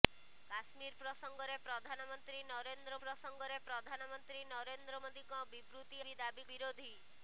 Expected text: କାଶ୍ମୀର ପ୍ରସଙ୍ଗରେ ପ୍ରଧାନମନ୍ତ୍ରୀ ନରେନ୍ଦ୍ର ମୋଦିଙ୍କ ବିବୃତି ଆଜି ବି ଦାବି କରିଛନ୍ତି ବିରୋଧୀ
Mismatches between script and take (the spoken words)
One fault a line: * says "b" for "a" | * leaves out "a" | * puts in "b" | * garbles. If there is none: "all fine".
* puts in "ପ୍ରସଙ୍ଗରେ ପ୍ରଧାନମନ୍ତ୍ରୀ ନରେନ୍ଦ୍ର"
* leaves out "ଆଜି"
* leaves out "କରିଛନ୍ତି"